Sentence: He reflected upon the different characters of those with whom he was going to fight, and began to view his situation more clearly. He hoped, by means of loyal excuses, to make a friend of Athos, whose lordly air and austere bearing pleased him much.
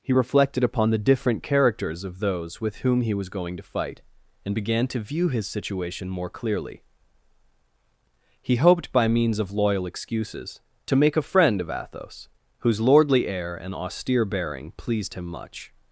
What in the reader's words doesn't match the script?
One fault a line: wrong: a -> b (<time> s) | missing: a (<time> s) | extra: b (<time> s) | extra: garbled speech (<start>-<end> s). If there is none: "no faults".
no faults